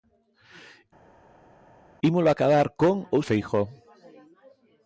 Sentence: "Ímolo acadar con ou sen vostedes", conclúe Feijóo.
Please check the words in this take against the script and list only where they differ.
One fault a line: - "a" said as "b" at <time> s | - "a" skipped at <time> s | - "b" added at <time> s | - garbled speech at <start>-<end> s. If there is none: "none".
- "sen vostedes conclúe" skipped at 3.2 s